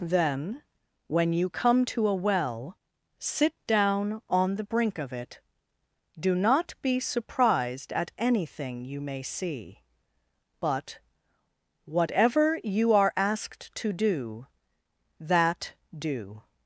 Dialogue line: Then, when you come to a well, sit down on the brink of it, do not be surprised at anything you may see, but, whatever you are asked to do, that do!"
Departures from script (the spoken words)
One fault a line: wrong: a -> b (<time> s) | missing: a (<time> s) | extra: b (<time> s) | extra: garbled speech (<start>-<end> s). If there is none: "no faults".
no faults